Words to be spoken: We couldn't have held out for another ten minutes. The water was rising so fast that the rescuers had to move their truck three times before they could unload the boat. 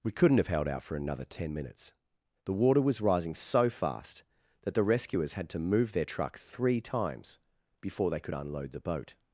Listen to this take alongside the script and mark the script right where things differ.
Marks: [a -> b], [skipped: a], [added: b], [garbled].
We couldn't have held out for another ten minutes. The water was rising so fast that the rescuers had to move their truck three times before they could unload the boat.